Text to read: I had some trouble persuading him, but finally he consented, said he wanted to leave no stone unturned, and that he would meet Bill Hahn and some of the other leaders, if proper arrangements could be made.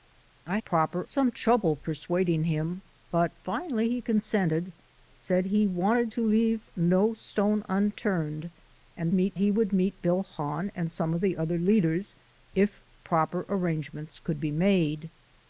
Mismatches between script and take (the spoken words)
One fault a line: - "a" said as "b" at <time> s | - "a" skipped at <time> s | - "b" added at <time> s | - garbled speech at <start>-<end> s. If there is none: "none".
- "had" said as "proper" at 0.6 s
- "that" said as "meet" at 9.1 s